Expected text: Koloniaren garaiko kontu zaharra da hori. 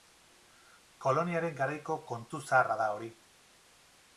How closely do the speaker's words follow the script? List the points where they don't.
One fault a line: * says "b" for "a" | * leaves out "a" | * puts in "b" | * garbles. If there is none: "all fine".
all fine